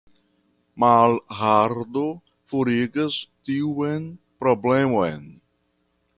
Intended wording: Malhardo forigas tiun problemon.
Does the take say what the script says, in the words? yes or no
yes